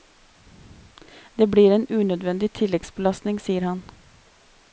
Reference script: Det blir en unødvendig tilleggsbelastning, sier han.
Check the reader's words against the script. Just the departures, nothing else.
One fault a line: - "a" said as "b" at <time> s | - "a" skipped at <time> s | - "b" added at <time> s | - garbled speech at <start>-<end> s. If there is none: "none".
none